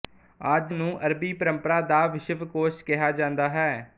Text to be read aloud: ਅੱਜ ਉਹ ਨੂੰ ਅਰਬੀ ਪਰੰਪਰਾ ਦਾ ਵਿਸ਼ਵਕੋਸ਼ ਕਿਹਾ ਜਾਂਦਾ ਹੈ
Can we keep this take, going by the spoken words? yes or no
no